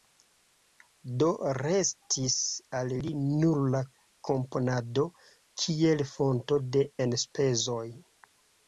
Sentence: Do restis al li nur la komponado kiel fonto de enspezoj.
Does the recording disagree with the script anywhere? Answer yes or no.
no